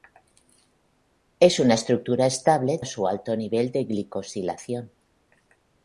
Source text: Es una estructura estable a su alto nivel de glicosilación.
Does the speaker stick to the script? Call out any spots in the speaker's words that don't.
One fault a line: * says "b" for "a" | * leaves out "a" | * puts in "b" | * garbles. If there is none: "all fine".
all fine